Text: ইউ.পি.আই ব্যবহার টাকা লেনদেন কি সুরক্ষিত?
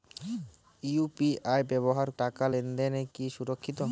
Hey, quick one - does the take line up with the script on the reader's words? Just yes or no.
yes